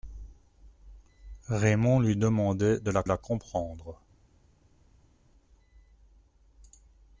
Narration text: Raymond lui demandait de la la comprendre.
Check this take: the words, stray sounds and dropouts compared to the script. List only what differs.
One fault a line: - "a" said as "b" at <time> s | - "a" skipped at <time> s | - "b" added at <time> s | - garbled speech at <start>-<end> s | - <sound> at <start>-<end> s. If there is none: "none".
none